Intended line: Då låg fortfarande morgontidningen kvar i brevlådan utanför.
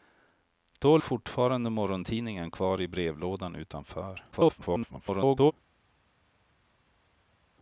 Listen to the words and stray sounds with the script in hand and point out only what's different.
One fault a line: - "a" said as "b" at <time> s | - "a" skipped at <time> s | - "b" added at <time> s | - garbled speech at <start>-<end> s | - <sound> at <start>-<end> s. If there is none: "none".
- "låg" skipped at 1.0 s
- garbled speech at 4.3-5.5 s